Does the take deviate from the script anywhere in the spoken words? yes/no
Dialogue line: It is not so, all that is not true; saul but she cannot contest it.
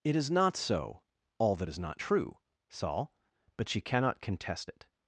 no